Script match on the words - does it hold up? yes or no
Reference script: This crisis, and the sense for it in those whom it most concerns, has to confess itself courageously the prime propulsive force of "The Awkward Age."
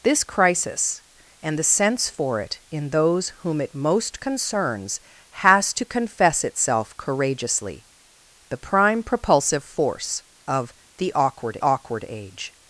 no